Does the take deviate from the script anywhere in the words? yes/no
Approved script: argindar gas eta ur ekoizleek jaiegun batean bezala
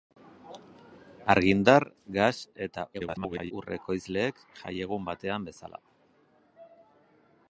yes